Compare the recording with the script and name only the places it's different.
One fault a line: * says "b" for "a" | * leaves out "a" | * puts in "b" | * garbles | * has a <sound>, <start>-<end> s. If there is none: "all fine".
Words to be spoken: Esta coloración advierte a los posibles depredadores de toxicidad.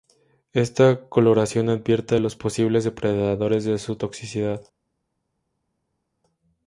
* puts in "su"